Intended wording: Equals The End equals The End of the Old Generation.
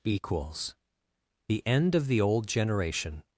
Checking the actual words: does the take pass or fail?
fail